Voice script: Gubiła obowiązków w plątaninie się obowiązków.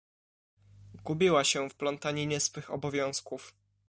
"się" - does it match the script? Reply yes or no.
no